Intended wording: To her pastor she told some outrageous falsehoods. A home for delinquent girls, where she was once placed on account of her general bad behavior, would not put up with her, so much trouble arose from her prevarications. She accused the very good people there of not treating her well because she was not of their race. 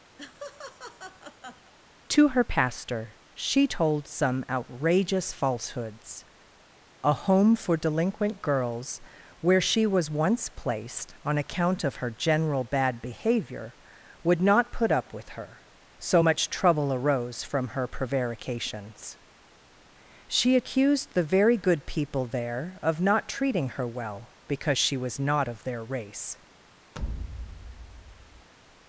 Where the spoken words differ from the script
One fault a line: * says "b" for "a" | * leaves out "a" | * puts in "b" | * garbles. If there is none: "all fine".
all fine